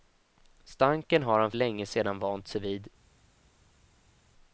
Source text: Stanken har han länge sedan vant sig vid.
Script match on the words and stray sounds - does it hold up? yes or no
yes